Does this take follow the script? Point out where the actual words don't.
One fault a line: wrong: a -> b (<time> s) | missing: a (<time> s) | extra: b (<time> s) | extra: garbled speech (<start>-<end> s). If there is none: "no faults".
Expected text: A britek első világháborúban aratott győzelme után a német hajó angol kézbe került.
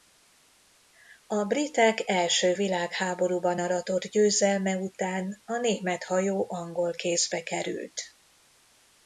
no faults